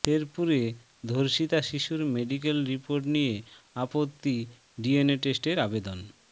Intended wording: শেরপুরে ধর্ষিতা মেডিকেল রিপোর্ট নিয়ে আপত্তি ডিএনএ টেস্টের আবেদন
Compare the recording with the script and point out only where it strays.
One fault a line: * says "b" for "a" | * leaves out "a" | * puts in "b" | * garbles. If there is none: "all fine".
* puts in "শিশুর"